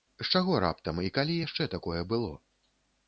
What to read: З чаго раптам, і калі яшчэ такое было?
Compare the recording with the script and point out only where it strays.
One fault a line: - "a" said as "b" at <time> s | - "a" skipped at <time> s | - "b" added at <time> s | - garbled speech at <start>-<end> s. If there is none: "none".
none